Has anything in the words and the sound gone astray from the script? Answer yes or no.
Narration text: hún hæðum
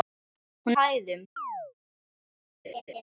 yes